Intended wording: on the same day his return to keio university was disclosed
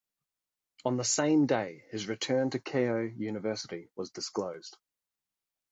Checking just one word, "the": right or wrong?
right